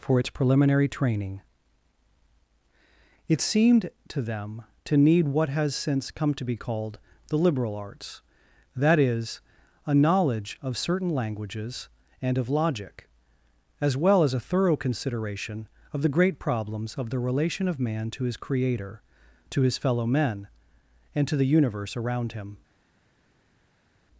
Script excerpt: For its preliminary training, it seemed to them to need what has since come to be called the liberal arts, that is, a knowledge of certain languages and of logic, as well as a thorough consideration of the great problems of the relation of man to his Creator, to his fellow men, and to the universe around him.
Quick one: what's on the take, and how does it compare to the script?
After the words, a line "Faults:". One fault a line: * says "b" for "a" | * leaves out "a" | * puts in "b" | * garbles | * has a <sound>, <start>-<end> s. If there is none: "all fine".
For its preliminary training, it seemed to them to need what has since come to be called the liberal arts, that is, a knowledge of certain languages and of logic, as well as a thorough consideration of the great problems of the relation of man to his Creator, to his fellow men, and to the universe around him.
Faults:
all fine